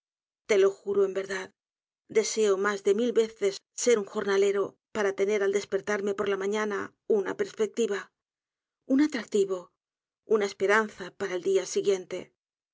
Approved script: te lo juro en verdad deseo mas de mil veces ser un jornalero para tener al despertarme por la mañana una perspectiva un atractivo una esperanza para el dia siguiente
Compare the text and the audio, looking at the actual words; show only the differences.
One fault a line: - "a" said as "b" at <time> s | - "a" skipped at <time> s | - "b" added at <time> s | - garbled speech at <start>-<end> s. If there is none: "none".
none